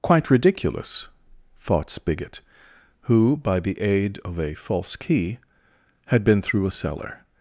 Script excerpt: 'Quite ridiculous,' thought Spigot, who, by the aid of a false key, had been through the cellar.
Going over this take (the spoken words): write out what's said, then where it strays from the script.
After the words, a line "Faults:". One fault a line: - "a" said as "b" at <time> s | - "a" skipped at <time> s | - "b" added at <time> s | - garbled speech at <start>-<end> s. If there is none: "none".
'Quite ridiculous,' thought Spigot, who, by the aid of a false key, had been through a cellar.
Faults:
- "the" said as "a" at 6.7 s